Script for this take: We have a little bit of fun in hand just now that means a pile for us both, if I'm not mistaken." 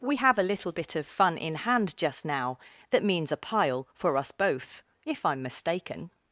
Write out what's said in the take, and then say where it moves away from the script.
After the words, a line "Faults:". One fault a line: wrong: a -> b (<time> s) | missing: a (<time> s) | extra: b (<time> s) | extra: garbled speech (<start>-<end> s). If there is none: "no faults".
We have a little bit of fun in hand just now that means a pile for us both, if I'm mistaken."
Faults:
missing: not (5.4 s)